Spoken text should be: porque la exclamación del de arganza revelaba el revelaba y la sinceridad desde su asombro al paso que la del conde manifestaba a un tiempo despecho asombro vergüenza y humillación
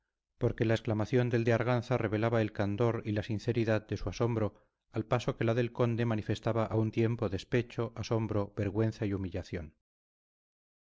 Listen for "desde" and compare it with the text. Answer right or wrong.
wrong